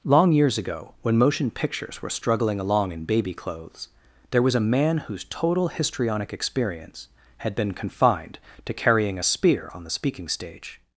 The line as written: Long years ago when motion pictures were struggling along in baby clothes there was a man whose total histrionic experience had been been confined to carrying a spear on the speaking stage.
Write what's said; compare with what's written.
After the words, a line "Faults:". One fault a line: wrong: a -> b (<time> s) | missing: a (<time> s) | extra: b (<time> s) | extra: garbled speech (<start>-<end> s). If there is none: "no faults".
Long years ago when motion pictures were struggling along in baby clothes there was a man whose total histrionic experience had been confined to carrying a spear on the speaking stage.
Faults:
missing: been (7.7 s)